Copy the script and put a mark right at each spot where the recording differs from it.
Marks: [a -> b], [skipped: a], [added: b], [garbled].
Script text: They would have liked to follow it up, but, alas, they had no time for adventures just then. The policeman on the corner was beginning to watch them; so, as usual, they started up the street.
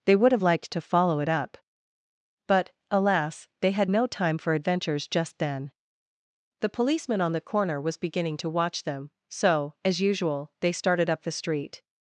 They would have liked to follow it up, but, alas, they had no time for adventures just then. The policeman on the corner was beginning to watch them; so, as usual, they started up the street.